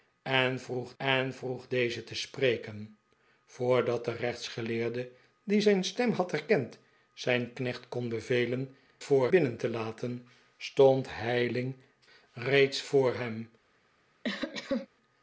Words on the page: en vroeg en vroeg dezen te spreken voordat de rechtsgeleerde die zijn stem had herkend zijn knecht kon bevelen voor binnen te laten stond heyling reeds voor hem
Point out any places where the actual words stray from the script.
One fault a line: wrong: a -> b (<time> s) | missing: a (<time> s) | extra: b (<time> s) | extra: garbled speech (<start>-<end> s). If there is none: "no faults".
no faults